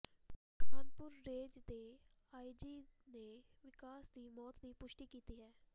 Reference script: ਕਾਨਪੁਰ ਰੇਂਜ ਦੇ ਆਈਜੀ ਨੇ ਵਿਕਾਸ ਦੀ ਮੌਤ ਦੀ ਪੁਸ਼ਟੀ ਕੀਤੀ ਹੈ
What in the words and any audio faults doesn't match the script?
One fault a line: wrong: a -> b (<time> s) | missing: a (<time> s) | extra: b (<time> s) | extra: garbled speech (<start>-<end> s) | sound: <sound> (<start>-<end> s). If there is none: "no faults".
no faults